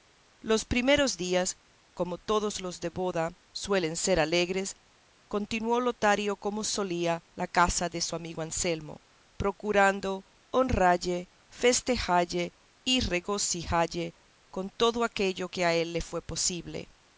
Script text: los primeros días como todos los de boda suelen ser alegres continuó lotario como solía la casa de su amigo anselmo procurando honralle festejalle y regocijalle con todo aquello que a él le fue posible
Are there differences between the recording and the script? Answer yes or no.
no